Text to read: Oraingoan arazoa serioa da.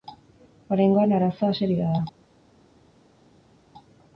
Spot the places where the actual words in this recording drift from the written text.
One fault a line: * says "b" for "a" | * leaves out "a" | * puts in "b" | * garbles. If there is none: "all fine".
all fine